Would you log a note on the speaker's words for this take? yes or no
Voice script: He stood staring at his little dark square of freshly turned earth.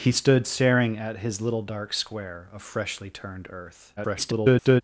yes